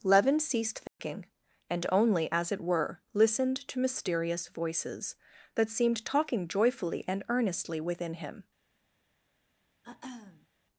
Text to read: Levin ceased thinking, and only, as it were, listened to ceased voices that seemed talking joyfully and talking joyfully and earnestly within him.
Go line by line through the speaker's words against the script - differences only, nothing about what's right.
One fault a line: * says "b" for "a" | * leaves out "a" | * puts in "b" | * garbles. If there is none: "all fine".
* says "mysterious" for "ceased"
* leaves out "talking joyfully and"